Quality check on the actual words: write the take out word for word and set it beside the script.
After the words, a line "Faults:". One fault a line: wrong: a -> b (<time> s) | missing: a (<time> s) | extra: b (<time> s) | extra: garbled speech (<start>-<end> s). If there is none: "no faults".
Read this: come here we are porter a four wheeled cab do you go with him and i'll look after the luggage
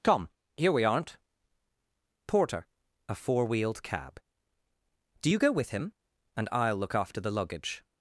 come here we aren't porter a four wheeled cab do you go with him and i'll look after the luggage
Faults:
wrong: are -> aren't (0.8 s)